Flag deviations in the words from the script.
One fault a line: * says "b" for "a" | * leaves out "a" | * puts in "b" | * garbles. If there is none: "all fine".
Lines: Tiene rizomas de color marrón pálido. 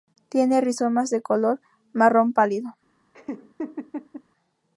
all fine